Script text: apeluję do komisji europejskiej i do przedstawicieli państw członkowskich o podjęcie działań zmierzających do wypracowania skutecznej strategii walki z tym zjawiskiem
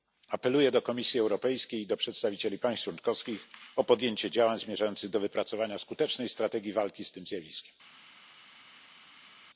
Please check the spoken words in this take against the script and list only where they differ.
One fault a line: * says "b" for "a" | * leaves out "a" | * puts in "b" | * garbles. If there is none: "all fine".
all fine